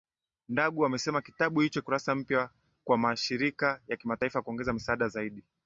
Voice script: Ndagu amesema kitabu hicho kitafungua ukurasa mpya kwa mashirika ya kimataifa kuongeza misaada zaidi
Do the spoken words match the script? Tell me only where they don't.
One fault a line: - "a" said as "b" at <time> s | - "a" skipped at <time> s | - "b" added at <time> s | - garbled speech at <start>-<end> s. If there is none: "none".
- "kitafungua" skipped at 1.8 s